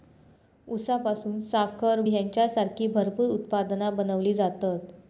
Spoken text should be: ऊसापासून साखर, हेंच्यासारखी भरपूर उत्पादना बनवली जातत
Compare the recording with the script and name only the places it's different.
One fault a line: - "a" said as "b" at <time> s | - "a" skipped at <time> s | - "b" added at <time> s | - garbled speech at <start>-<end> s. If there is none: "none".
none